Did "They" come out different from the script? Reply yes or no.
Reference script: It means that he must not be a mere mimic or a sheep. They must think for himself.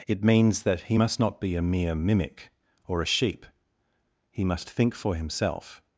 yes